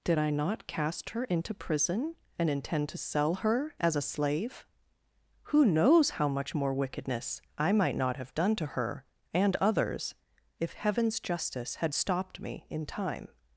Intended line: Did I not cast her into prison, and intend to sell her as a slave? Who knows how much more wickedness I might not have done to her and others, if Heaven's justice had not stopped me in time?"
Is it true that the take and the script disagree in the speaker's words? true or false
true